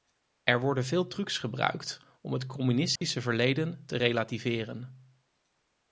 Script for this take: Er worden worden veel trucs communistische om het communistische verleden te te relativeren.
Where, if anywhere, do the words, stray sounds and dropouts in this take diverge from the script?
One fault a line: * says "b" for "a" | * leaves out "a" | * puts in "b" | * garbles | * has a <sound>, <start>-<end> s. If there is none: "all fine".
* leaves out "worden"
* says "gebruikt" for "communistische"
* has a dropout, 3.0-3.0 s
* leaves out "te"